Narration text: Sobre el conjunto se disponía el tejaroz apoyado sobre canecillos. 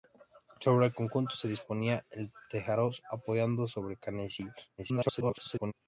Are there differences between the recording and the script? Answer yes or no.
yes